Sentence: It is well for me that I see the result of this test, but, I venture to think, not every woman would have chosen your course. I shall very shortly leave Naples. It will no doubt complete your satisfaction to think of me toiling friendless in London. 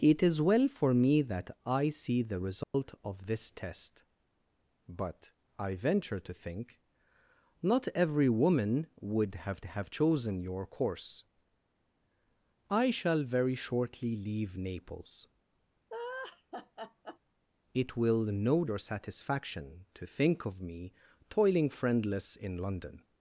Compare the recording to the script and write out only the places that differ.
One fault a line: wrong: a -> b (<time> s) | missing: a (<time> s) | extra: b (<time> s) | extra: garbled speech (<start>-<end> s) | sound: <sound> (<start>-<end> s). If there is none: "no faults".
sound: dropout (2.6-2.7 s)
extra: have (9.6 s)
sound: laugh (15.9-17.2 s)
missing: doubt complete (18.6 s)